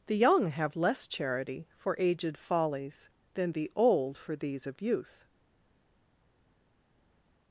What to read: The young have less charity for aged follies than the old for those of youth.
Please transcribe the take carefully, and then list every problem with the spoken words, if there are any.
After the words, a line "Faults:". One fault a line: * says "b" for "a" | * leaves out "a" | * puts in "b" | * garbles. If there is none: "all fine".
The young have less charity for aged follies than the old for these of youth.
Faults:
* says "these" for "those"